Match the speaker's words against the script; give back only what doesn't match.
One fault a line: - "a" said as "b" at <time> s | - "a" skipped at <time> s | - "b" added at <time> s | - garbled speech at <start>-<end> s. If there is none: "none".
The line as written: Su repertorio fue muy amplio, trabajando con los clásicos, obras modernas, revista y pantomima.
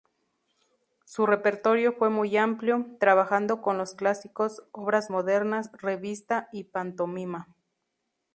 none